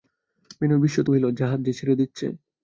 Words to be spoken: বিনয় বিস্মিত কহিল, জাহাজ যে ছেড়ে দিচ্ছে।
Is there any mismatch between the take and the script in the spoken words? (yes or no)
no